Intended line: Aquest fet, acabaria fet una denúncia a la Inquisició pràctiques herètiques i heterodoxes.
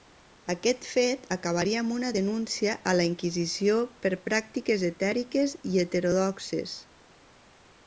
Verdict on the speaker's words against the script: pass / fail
fail